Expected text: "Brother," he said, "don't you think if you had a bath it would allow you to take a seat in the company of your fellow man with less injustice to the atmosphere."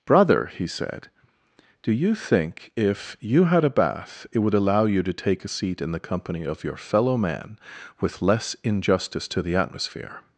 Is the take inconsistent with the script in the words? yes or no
yes